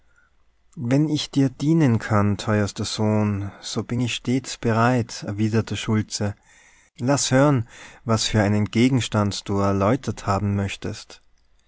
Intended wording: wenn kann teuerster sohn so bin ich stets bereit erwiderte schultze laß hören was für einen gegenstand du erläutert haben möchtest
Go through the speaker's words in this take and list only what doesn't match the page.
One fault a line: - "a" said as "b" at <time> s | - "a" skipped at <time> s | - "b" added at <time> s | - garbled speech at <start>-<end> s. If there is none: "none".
- "ich dir dienen" added at 1.1 s